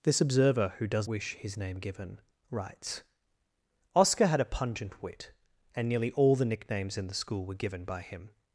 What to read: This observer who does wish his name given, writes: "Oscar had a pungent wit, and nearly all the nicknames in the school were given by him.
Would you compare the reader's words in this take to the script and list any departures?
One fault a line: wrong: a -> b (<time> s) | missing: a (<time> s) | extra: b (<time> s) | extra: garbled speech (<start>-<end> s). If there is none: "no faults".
no faults